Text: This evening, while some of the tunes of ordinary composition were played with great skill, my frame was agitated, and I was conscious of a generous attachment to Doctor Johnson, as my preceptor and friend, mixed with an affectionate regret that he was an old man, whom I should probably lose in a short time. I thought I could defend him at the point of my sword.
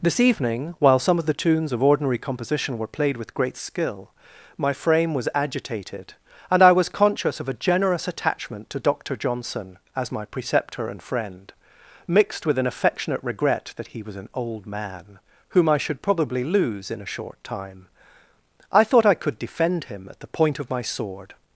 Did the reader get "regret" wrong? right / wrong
right